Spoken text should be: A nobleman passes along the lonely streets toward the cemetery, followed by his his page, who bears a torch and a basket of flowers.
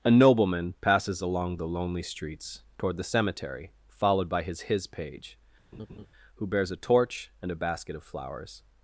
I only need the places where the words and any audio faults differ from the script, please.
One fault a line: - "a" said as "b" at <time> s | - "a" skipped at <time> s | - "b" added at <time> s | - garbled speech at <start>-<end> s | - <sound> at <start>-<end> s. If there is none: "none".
- laugh at 5.7-6.1 s